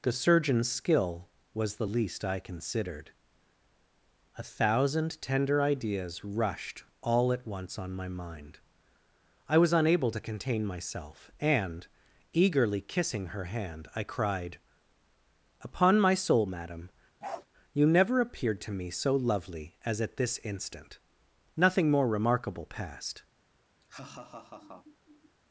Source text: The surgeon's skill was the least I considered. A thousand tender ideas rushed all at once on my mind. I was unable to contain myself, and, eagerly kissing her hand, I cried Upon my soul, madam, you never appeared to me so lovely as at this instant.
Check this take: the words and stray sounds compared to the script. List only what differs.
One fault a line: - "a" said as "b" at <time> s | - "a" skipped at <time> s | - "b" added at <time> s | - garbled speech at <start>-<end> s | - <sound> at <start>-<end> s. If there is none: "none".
- bark at 17.2-17.5 s
- "Nothing more remarkable passed" added at 21.6 s
- laugh at 23.8-25.4 s